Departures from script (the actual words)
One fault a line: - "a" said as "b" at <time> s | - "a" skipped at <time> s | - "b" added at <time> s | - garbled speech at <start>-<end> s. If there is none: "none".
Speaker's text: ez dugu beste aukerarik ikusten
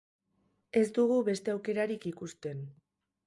none